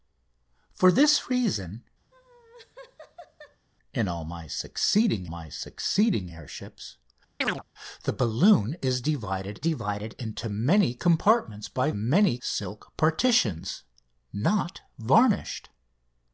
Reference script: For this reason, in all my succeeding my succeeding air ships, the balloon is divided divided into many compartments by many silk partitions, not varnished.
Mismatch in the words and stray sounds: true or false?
true